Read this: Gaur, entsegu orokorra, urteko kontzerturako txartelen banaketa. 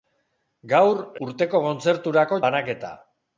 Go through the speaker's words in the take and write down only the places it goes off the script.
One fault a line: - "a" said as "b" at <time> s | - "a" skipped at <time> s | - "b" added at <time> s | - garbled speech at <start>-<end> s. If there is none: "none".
- "entsegu orokorra" skipped at 1.0 s
- "txartelen" skipped at 2.4 s